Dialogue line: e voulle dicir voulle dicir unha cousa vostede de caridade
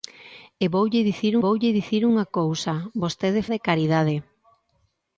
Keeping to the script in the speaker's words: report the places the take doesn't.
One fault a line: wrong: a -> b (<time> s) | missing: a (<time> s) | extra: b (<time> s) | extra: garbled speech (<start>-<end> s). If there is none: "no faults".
no faults